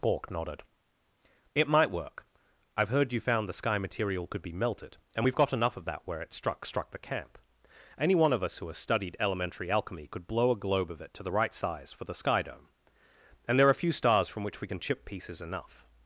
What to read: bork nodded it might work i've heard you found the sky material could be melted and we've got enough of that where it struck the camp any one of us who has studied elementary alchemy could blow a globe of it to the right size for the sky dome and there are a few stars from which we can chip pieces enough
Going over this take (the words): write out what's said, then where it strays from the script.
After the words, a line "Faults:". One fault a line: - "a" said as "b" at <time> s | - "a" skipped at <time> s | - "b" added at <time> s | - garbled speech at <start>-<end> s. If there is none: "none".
bork nodded it might work i've heard you found the sky material could be melted and we've got enough of that where it struck struck the camp any one of us who has studied elementary alchemy could blow a globe of it to the right size for the sky dome and there are a few stars from which we can chip pieces enough
Faults:
- "struck" added at 6.6 s